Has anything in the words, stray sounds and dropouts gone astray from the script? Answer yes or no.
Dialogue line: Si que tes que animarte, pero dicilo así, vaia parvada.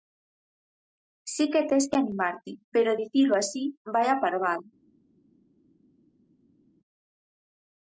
no